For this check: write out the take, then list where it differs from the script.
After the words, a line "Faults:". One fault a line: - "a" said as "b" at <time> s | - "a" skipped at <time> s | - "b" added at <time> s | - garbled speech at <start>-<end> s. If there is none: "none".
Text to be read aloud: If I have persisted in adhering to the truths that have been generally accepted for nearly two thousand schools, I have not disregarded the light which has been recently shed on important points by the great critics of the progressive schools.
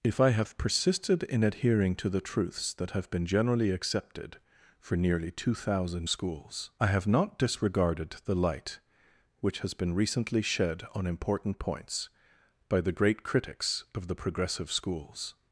If I have persisted in adhering to the truths that have been generally accepted for nearly two thousand schools, I have not disregarded the light which has been recently shed on important points by the great critics of the progressive schools.
Faults:
none